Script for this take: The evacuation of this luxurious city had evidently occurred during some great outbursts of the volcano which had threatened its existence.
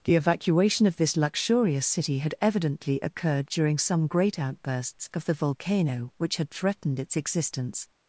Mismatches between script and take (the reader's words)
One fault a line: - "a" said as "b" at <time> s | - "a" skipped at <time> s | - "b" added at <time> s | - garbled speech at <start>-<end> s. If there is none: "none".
none